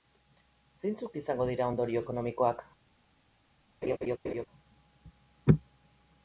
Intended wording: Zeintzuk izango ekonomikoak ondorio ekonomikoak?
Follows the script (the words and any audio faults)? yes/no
no